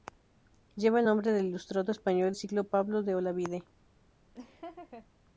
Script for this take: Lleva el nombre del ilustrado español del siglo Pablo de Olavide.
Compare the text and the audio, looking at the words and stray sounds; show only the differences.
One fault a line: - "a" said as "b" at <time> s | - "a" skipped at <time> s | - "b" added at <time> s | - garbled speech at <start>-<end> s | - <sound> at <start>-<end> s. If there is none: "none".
- "del" skipped at 2.3 s
- laugh at 4.3-5.1 s